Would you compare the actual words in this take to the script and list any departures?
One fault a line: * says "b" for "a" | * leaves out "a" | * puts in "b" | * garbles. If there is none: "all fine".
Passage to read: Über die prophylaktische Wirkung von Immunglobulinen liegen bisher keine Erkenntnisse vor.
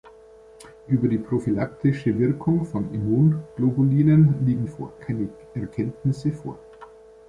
* says "vor" for "bisher"